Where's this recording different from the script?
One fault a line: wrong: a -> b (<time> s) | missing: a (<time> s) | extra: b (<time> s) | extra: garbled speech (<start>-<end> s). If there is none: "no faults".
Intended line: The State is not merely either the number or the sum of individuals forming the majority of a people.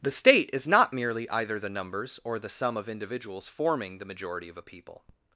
wrong: number -> numbers (1.7 s)